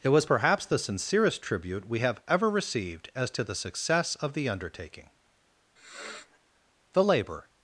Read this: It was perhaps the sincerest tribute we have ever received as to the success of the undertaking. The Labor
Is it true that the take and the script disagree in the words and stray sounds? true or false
true